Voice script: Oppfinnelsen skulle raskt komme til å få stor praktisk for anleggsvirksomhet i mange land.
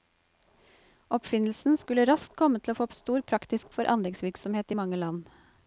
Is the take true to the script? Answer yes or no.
yes